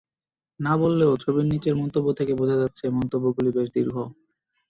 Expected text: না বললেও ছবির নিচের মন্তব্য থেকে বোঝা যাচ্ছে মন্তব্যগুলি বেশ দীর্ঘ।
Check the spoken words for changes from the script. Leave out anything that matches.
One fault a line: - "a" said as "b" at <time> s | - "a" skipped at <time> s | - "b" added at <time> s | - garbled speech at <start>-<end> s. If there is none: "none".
none